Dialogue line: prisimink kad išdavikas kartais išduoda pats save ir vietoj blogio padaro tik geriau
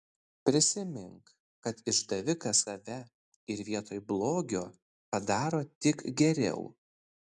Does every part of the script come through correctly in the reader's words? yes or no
no